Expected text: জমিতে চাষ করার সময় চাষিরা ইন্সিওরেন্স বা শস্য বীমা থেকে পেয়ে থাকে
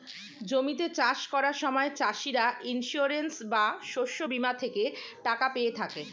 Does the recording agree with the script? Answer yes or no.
no